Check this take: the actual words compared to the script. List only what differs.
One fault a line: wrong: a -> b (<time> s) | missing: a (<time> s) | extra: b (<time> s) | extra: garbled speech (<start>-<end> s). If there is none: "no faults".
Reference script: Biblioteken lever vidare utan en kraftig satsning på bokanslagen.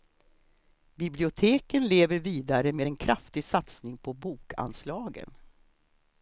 wrong: utan -> med (2.7 s)